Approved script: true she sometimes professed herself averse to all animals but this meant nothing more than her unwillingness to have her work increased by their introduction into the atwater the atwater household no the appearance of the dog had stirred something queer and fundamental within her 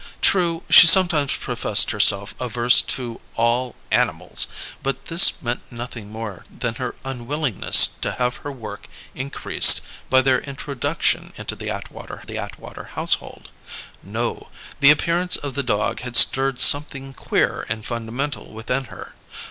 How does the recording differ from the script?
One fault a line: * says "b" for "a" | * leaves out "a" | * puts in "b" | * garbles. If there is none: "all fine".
all fine